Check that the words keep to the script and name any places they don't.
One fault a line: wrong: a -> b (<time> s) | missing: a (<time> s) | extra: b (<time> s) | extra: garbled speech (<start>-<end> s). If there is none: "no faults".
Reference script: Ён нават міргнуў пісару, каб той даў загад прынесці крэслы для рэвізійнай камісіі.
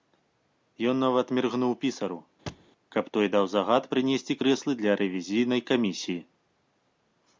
no faults